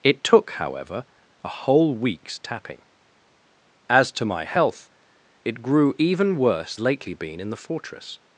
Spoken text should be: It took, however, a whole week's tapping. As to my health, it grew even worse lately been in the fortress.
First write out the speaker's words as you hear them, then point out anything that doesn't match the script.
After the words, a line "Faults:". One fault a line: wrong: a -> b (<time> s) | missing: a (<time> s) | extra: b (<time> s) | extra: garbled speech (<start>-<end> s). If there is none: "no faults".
It took, however, a whole week's tapping. As to my health, it grew even worse lately been in the fortress.
Faults:
no faults